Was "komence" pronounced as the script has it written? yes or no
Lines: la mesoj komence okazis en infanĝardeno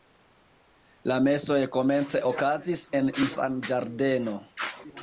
yes